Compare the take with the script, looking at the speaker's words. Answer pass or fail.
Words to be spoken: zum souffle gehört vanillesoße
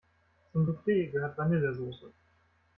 pass